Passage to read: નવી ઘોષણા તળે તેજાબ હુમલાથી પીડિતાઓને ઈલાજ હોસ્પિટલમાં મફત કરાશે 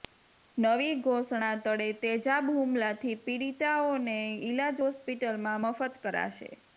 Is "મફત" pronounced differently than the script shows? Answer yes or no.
no